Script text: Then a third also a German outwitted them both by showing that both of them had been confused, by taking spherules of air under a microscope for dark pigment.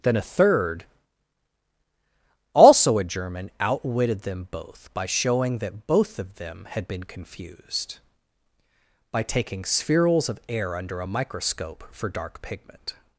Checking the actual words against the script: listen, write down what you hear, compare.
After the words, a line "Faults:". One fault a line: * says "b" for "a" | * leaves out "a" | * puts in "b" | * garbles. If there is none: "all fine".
Then a third also a German outwitted them both by showing that both of them had been confused, by taking spherules of air under a microscope for dark pigment.
Faults:
all fine